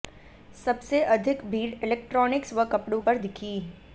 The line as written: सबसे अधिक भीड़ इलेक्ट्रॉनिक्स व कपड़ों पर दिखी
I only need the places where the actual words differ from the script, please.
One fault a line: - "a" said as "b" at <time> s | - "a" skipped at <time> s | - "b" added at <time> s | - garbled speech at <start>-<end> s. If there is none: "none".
none